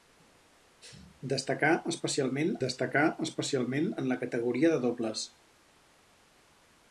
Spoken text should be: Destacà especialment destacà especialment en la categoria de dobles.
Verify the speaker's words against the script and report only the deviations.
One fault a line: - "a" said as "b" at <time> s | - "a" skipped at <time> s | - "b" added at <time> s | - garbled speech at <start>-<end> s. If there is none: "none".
none